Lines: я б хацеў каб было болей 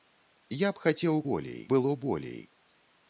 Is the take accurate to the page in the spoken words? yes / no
no